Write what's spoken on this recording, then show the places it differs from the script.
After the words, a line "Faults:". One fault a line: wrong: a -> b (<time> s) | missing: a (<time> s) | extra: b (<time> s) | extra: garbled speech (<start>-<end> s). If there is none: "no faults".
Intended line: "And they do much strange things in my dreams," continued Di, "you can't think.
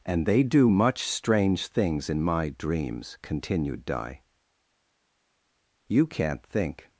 "And they do much strange things in my dreams," continued Di, "you can't think.
Faults:
no faults